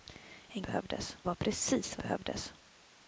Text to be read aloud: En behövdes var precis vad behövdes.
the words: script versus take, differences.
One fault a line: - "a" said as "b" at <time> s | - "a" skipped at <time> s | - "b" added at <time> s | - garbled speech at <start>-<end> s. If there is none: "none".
none